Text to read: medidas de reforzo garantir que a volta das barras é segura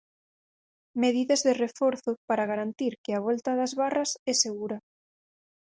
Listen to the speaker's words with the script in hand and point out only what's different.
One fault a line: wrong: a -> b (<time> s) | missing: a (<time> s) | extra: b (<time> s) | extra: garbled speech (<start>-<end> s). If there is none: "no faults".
extra: para (2.3 s)